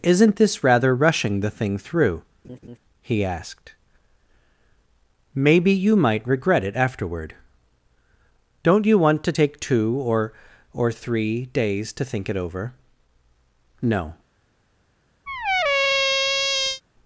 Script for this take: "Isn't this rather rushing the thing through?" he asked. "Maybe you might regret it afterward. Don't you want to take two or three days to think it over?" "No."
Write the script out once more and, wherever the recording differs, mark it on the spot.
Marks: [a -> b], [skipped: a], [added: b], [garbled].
"Isn't this rather rushing the thing through?" he asked. "Maybe you might regret it afterward. Don't you want to take two or [added: or] three days to think it over?" "No."